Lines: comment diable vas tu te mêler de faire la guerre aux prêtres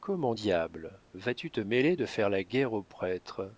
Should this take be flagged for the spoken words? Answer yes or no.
no